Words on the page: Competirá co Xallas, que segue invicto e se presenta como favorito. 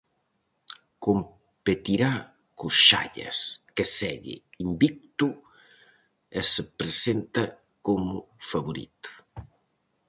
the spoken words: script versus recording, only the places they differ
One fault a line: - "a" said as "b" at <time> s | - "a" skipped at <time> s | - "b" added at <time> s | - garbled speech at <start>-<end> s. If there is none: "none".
none